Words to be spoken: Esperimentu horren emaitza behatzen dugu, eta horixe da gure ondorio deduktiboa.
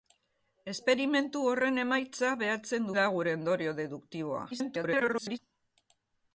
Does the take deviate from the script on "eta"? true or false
true